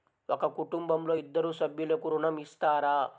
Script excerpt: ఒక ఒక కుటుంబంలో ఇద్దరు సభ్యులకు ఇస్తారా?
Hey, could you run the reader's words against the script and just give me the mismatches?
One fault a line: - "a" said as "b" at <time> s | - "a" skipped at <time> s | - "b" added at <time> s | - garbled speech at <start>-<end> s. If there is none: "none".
- "ఒక" skipped at 0.5 s
- "ఋణం" added at 2.1 s